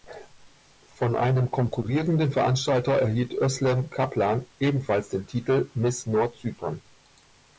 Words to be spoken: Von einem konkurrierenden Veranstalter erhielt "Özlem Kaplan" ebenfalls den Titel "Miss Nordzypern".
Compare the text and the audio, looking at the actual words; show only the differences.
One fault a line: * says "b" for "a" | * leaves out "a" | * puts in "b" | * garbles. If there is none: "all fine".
all fine